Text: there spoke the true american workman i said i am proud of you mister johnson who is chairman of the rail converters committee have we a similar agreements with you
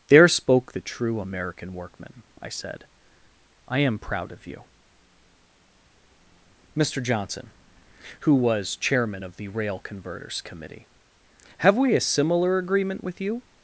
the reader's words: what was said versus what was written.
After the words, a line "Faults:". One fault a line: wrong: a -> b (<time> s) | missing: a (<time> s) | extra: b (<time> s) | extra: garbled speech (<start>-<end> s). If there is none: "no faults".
there spoke the true american workman i said i am proud of you mister johnson who was chairman of the rail converters committee have we a similar agreement with you
Faults:
wrong: is -> was (8.3 s)
wrong: agreements -> agreement (12.6 s)